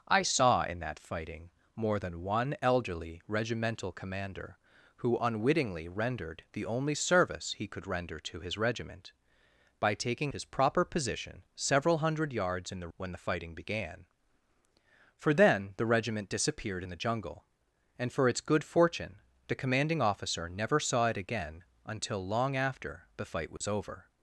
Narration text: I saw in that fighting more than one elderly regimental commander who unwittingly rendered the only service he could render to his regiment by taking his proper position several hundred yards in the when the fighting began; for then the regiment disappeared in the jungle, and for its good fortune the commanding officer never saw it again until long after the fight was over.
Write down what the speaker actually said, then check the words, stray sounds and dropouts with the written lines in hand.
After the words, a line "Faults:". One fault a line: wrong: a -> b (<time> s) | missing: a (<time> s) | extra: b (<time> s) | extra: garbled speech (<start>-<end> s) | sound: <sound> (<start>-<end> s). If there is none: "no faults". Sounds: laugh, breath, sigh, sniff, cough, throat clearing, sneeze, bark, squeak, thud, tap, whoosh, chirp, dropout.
I saw in that fighting more than one elderly regimental commander who unwittingly rendered the only service he could render to his regiment by taking his proper position several hundred yards in the when the fighting began; for then the regiment disappeared in the jungle, and for its good fortune the commanding officer never saw it again until long after the fight was over.
Faults:
sound: dropout (23.6-23.6 s)